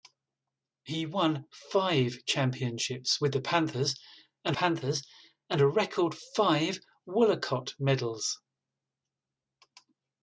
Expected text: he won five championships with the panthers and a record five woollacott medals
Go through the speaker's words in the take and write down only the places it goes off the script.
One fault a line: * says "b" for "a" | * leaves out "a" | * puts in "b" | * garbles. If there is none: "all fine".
* puts in "panthers and"